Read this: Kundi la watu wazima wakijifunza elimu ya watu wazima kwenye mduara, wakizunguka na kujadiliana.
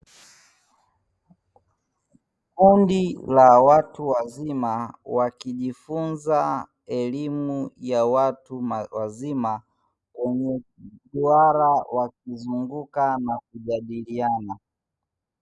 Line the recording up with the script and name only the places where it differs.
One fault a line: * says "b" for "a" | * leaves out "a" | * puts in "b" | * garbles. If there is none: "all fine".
all fine